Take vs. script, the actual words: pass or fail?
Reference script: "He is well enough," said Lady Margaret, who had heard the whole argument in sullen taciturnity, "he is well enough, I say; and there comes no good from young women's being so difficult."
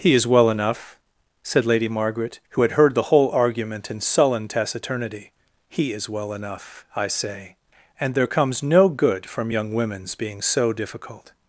pass